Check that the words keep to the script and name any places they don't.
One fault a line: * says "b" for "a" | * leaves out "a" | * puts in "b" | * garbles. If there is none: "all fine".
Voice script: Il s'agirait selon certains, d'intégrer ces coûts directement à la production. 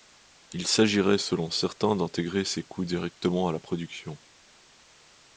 all fine